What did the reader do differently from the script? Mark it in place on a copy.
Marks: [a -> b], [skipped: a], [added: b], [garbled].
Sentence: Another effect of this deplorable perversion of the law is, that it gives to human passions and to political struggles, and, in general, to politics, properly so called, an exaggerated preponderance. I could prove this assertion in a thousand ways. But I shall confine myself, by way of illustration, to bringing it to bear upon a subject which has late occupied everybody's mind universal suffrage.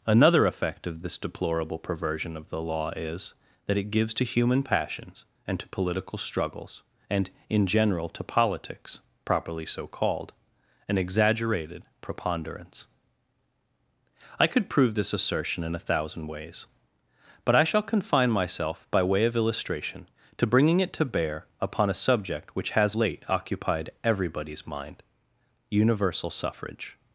Another effect of this deplorable perversion of the law is, that it gives to human passions and to political struggles, and, in general, to politics, properly so called, an exaggerated preponderance. I could prove this assertion in a thousand ways. But I shall confine myself, by way of illustration, to bringing it to bear upon a subject which has late occupied everybody's mind universal suffrage.